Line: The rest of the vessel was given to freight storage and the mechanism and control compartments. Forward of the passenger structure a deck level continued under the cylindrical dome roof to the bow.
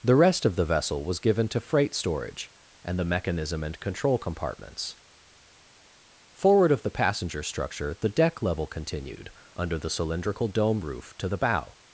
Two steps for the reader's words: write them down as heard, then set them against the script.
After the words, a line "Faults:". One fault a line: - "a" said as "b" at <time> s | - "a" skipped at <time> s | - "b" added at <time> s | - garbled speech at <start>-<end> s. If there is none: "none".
The rest of the vessel was given to freight storage and the mechanism and control compartments. Forward of the passenger structure the deck level continued under the cylindrical dome roof to the bow.
Faults:
- "a" said as "the" at 7.9 s